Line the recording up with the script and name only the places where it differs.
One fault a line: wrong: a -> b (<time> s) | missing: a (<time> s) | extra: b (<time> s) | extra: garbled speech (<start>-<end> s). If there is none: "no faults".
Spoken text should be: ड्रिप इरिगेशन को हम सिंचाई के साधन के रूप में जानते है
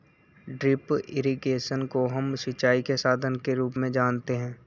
no faults